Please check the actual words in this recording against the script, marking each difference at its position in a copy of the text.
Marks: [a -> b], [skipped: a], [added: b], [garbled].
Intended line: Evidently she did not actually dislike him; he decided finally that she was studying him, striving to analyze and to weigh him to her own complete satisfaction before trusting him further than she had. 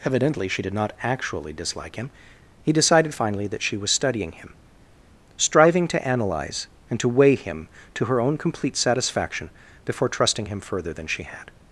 Evidently she did not actually dislike him; he decided finally that she was studying him, striving to analyze and to weigh him to her own complete satisfaction before trusting him further than she had.